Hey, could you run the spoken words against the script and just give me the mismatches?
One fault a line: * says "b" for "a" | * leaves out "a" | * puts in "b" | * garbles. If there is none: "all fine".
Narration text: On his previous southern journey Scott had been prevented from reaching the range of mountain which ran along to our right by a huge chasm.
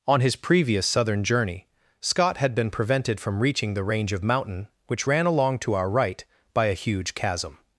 all fine